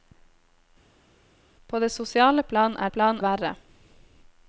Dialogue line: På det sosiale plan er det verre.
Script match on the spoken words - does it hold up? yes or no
no